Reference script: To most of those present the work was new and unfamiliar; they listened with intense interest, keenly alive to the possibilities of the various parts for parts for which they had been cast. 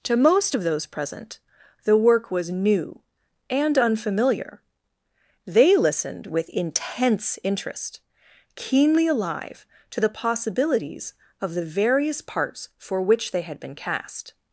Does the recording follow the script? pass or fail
fail